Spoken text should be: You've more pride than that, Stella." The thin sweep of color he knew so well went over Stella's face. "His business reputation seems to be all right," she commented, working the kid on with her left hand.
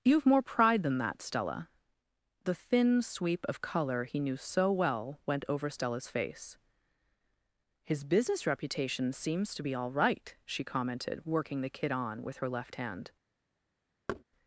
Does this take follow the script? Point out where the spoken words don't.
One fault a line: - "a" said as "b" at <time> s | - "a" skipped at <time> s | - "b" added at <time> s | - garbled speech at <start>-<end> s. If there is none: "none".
none